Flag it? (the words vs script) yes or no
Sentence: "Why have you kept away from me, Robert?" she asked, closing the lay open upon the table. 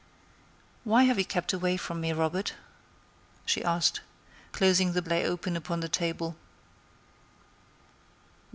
no